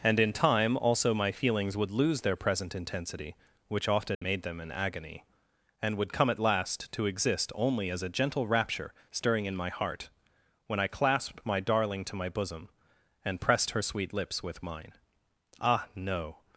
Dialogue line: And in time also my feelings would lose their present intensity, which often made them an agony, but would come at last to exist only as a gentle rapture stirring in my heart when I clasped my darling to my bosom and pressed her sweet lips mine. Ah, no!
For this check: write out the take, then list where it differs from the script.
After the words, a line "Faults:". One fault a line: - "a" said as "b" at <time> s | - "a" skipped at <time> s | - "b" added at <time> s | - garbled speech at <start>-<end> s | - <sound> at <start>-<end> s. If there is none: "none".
And in time also my feelings would lose their present intensity, which often made them an agony, and would come at last to exist only as a gentle rapture stirring in my heart when I clasped my darling to my bosom and pressed her sweet lips with mine. Ah, no!
Faults:
- dropout at 4.1-4.2 s
- "but" said as "and" at 5.8 s
- "with" added at 14.4 s